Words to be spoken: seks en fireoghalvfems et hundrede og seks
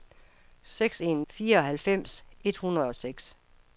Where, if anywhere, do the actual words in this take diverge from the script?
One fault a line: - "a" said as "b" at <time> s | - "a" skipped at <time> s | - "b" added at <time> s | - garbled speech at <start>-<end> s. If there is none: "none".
none